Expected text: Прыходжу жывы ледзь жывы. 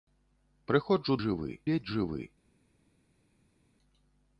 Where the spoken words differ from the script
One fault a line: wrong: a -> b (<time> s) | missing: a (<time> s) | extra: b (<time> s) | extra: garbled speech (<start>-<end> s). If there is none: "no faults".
no faults